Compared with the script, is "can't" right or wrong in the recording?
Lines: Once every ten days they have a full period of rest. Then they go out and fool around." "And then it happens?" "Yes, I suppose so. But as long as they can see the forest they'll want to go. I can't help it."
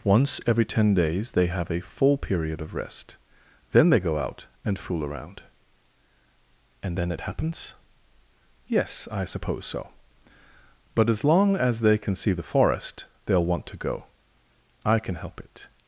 wrong